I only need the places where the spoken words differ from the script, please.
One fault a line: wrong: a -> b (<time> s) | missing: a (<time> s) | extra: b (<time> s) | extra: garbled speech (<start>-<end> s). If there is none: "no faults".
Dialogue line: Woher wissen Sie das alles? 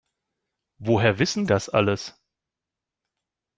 missing: Sie (1.4 s)